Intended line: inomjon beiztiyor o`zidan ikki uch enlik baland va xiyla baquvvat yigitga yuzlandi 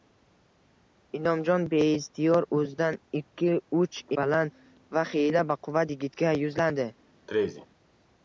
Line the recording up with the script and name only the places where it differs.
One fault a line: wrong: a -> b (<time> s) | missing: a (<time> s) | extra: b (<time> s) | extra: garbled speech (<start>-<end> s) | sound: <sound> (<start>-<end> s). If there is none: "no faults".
missing: enlik (4.0 s)
sound: sneeze (7.3-7.7 s)